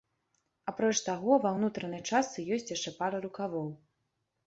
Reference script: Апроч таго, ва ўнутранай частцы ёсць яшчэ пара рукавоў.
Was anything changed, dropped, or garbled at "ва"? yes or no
no